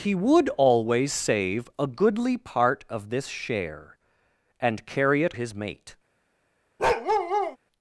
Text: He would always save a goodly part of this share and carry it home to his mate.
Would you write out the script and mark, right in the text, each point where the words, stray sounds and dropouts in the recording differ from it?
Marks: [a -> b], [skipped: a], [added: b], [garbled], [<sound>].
He would always save a goodly part of this share and carry it [skipped: home to] his mate. [bark]